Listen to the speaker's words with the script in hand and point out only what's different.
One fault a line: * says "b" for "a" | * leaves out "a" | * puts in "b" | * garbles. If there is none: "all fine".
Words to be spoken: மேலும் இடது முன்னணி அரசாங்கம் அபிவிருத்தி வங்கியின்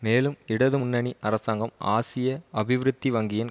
* puts in "ஆசிய"